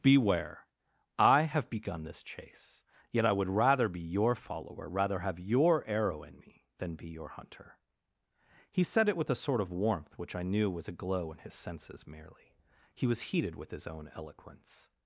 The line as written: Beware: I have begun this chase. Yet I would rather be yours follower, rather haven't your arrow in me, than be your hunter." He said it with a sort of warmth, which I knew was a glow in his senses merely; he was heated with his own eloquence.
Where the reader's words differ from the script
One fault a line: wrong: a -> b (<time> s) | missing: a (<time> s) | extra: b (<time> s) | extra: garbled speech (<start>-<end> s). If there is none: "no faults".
wrong: yours -> your (4.0 s)
wrong: haven't -> have (5.2 s)